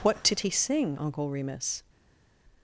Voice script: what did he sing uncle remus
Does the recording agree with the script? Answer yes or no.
yes